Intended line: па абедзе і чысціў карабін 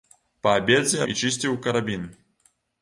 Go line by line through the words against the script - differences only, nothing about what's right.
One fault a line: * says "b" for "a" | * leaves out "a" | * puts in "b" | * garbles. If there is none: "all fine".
all fine